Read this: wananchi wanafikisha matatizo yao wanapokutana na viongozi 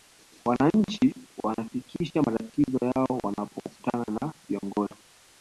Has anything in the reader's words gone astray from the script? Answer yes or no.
no